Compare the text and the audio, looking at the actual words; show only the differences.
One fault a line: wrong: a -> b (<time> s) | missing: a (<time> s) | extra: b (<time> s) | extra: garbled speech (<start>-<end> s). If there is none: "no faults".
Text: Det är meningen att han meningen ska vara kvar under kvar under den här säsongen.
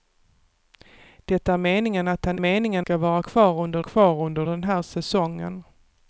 no faults